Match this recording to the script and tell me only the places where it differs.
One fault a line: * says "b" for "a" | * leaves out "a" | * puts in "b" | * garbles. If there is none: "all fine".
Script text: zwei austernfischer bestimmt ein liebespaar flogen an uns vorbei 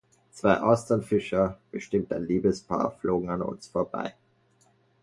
all fine